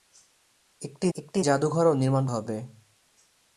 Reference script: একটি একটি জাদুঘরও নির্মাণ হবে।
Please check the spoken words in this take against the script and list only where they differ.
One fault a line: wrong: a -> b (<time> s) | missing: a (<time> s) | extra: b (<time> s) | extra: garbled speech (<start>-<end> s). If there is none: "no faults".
no faults